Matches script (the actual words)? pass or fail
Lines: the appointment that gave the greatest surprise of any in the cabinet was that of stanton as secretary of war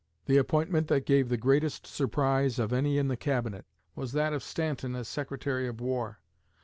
pass